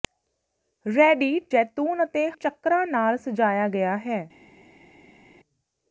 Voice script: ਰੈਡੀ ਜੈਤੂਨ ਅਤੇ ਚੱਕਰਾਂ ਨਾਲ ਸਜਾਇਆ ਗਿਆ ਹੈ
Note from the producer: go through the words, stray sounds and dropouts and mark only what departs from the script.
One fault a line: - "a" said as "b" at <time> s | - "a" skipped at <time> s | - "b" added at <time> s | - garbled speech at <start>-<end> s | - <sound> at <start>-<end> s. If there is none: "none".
none